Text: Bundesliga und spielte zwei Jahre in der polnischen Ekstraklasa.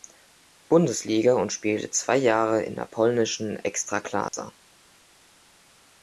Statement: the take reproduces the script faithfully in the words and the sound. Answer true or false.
false